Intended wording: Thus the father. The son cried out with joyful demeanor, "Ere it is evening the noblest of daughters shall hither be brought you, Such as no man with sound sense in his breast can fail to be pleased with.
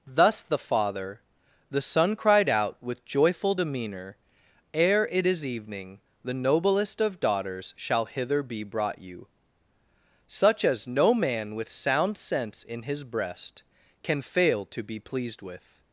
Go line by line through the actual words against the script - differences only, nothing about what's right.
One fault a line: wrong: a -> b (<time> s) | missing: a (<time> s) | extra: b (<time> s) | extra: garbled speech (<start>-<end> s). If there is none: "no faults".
no faults